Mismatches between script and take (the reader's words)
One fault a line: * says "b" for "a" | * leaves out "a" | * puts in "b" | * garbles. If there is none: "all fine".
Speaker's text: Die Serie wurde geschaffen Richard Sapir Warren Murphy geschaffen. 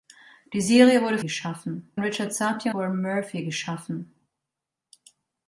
all fine